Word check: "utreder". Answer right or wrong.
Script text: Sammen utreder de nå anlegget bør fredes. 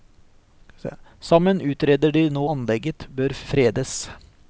right